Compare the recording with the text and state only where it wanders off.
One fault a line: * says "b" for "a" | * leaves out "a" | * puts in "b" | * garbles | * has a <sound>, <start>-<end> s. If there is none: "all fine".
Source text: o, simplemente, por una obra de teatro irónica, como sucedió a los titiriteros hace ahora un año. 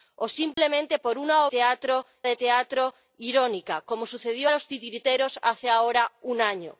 * has a dropout, 0.5-0.6 s
* says "teatro" for "obra"